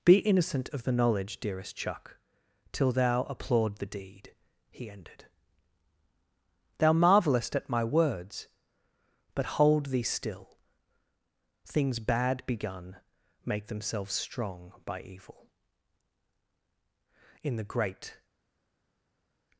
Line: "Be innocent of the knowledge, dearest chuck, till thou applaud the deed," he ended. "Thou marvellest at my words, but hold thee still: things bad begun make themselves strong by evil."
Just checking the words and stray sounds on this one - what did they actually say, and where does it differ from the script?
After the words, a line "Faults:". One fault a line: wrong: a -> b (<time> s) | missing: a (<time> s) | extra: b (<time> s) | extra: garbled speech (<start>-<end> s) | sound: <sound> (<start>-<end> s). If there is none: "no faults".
"Be innocent of the knowledge, dearest chuck, till thou applaud the deed," he ended. "Thou marvellest at my words, but hold thee still: things bad begun make themselves strong by evil." In the great
Faults:
extra: In the great (17.4 s)